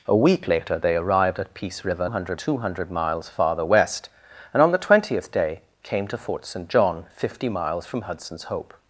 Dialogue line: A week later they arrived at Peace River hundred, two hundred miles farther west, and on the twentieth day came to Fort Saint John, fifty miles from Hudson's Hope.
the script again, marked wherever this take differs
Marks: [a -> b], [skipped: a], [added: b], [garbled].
A week later they arrived at Peace River hundred, two hundred miles farther west, and on the twentieth day came to Fort Saint John, fifty miles from Hudson's Hope.